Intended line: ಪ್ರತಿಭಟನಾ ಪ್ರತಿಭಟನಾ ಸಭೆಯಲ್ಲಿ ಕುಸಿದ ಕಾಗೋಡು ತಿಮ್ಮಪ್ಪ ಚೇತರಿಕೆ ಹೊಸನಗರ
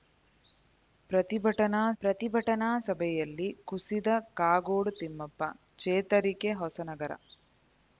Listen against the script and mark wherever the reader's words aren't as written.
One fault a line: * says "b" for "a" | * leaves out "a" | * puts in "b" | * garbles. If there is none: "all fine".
all fine